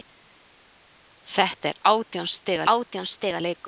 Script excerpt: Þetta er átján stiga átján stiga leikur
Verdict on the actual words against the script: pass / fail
pass